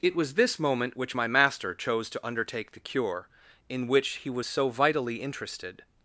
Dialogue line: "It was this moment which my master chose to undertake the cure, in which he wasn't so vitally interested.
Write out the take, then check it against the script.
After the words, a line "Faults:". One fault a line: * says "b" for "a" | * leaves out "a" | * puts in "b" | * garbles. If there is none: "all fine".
"It was this moment which my master chose to undertake the cure, in which he was so vitally interested.
Faults:
* says "was" for "wasn't"